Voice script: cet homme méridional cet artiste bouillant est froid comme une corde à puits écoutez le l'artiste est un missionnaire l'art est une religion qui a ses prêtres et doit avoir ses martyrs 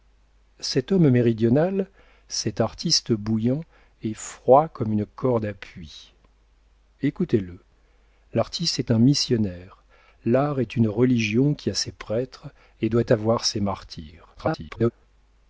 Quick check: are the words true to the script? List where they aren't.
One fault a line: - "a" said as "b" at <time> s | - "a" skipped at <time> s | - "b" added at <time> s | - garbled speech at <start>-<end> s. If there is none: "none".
- garbled speech at 14.3-14.9 s